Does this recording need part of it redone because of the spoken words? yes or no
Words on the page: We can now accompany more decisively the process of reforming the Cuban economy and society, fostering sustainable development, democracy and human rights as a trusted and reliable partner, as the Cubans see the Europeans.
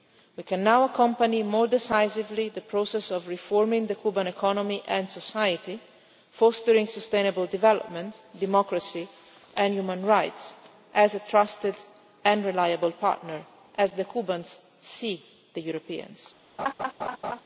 no